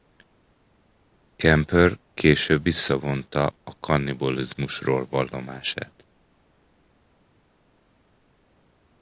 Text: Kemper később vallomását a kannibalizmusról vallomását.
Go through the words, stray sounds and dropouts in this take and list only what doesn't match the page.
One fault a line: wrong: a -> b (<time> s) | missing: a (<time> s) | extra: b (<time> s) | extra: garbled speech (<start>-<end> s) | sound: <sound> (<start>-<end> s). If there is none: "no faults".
wrong: vallomását -> visszavonta (2.6 s)